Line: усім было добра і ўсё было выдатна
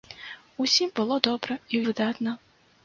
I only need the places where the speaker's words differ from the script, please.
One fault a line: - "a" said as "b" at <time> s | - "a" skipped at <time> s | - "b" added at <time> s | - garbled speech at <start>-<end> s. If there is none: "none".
- "ўсё было" skipped at 1.8 s